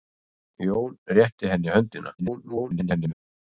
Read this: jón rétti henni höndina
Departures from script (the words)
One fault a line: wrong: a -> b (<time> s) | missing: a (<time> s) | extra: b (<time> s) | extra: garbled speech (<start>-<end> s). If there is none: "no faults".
extra: garbled speech (2.2-3.1 s)